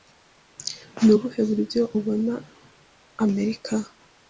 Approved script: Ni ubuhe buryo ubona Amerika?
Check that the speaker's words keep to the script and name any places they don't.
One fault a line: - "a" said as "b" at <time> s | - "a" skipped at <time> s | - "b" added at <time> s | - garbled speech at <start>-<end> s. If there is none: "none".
none